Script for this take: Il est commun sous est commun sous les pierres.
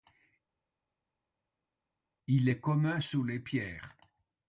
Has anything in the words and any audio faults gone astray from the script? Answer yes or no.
yes